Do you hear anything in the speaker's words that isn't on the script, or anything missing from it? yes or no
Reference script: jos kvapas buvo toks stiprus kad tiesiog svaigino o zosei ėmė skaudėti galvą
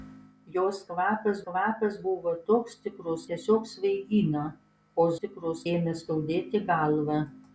yes